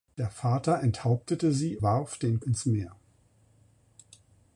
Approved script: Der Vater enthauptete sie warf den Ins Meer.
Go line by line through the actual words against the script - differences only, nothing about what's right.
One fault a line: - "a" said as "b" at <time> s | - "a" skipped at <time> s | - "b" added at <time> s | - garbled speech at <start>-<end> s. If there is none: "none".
none